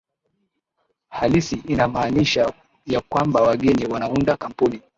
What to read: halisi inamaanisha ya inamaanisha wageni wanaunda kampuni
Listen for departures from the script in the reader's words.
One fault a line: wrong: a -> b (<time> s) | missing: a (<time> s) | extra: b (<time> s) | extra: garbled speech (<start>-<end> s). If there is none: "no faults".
wrong: inamaanisha -> kwamba (3.0 s)